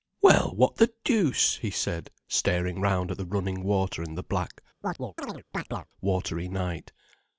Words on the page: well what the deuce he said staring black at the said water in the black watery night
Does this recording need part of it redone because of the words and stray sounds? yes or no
yes